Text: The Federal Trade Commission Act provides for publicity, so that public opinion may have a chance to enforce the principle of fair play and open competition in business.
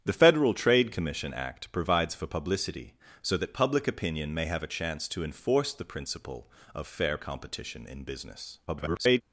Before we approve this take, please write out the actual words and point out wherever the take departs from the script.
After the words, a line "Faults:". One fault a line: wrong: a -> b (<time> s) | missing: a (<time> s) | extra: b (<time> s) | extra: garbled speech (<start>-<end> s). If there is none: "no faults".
The Federal Trade Commission Act provides for publicity, so that public opinion may have a chance to enforce the principle of fair competition in business. [garbled]
Faults:
missing: play and open (7.2 s)
extra: garbled speech (8.7-9.2 s)